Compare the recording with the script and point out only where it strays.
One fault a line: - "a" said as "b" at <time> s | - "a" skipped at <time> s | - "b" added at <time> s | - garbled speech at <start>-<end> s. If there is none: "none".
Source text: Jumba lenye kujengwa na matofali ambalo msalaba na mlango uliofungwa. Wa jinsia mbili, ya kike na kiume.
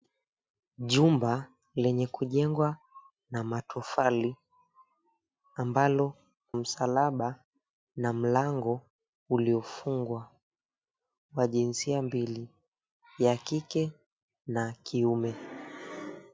none